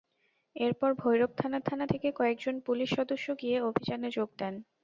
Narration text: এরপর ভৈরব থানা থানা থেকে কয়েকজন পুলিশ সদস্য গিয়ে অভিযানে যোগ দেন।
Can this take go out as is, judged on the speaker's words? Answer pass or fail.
pass